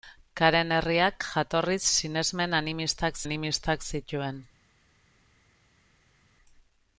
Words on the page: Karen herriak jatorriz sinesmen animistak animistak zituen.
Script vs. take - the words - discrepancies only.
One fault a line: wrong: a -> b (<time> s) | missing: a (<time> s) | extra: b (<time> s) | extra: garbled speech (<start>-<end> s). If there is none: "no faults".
no faults